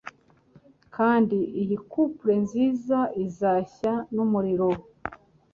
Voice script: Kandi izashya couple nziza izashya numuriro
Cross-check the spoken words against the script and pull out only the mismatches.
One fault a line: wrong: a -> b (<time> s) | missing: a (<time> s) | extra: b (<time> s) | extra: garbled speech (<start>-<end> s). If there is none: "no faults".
wrong: izashya -> iyi (1.6 s)